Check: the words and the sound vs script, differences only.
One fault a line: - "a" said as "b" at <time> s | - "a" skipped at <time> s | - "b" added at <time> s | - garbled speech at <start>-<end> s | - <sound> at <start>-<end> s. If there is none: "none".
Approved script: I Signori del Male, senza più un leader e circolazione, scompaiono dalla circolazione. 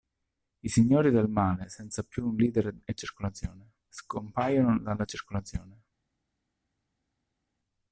none